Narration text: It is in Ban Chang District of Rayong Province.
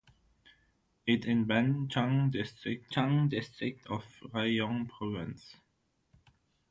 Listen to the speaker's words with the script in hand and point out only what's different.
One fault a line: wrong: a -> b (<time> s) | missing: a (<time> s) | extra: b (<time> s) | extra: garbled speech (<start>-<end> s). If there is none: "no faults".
missing: is (1.3 s)
extra: Chang District (2.9 s)